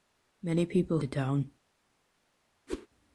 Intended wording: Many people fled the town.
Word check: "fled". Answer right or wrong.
wrong